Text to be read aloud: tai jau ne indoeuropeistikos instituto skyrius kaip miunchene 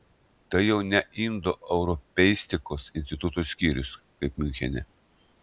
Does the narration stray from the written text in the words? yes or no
no